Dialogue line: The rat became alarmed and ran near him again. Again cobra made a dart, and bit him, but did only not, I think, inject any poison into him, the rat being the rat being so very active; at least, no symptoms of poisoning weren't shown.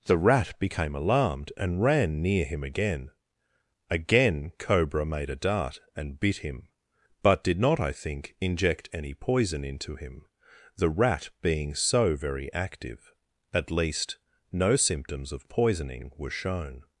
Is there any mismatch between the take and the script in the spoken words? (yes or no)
yes